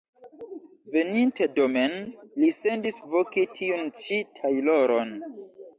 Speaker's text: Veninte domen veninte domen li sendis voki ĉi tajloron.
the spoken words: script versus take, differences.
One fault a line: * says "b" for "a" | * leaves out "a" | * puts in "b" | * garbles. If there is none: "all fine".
* leaves out "veninte domen"
* puts in "tiun"